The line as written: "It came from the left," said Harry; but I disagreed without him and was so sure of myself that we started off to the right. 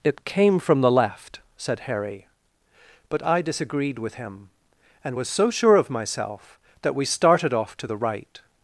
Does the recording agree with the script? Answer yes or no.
no